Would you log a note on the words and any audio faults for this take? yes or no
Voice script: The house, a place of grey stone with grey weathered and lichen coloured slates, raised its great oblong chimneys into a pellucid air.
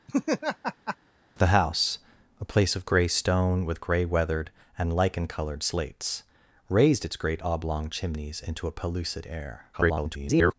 yes